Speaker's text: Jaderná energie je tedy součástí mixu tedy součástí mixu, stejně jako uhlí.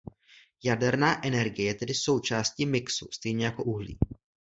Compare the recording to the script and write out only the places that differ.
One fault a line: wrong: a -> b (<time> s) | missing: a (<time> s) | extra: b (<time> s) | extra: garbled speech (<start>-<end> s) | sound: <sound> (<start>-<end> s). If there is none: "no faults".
missing: tedy součástí mixu (3.1 s)